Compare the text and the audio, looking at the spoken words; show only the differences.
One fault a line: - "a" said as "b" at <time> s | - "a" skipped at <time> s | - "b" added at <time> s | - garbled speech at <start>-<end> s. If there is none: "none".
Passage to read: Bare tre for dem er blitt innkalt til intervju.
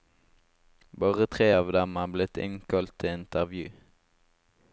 - "for" said as "av" at 1.6 s